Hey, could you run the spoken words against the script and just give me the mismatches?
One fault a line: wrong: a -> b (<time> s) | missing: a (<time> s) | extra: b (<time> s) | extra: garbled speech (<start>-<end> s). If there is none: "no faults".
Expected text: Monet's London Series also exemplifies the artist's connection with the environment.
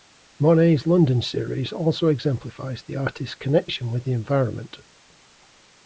no faults